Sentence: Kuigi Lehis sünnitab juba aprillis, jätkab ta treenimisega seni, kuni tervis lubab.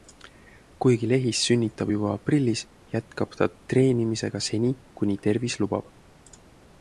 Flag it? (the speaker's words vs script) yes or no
no